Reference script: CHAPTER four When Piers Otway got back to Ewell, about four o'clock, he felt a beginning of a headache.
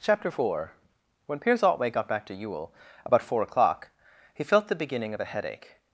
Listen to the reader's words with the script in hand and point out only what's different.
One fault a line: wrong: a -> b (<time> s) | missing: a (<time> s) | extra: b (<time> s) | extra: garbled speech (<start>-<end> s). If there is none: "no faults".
wrong: a -> the (4.7 s)